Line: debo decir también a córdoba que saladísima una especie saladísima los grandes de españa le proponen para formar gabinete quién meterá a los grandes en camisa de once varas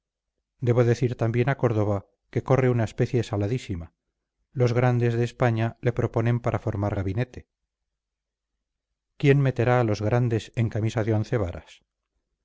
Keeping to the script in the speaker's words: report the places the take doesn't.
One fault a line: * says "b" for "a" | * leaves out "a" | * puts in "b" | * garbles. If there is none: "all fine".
* says "corre" for "saladísima"